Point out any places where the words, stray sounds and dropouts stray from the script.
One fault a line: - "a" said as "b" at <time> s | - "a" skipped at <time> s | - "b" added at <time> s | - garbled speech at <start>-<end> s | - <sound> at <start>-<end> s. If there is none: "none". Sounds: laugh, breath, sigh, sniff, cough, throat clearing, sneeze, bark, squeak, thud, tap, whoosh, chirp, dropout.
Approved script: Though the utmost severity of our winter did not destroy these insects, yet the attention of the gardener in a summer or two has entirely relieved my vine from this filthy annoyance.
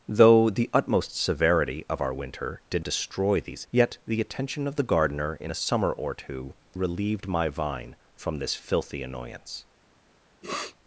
- "not" skipped at 2.8 s
- "insects" skipped at 3.7 s
- "has entirely" skipped at 6.5 s
- sniff at 10.4-10.8 s